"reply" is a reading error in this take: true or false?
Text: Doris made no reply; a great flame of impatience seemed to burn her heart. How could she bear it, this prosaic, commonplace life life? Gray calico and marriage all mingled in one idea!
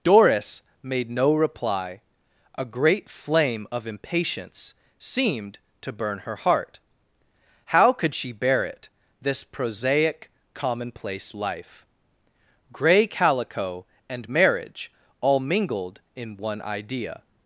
false